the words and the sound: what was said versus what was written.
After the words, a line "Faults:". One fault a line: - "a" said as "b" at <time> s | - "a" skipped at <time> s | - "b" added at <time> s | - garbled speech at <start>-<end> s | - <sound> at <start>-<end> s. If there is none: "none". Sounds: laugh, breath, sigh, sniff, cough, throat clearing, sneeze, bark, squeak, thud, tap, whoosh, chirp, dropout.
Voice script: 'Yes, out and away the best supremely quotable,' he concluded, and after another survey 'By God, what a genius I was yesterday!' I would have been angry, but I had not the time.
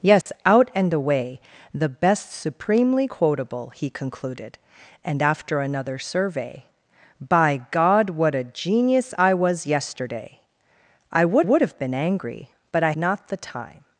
'Yes, out and away the best supremely quotable,' he concluded, and after another survey 'By God, what a genius I was yesterday!' I would would have been angry, but I not the time.
Faults:
- dropout at 0.2-0.3 s
- "would" added at 11.4 s
- "had" skipped at 12.9 s